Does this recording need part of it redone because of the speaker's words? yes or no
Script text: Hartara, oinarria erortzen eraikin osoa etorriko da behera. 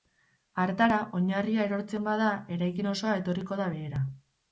yes